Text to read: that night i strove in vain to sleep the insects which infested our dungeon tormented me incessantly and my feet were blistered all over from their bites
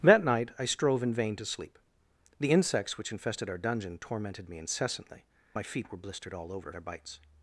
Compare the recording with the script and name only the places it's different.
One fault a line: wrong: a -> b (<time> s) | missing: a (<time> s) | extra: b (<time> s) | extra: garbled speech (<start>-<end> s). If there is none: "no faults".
missing: and (5.2 s)
missing: from (6.7 s)